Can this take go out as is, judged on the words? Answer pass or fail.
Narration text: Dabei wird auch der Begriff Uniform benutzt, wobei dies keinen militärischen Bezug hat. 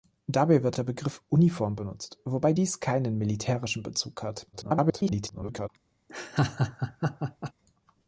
fail